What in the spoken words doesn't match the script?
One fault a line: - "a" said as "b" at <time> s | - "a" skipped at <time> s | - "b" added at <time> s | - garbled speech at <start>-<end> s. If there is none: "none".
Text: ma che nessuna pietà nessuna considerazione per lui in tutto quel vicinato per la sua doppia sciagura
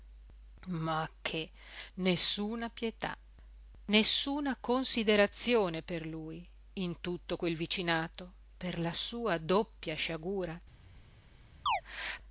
none